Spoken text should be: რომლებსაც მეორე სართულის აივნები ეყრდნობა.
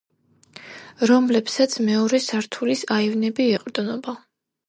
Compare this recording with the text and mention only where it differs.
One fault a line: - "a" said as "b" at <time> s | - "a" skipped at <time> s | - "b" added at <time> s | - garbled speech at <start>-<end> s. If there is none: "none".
none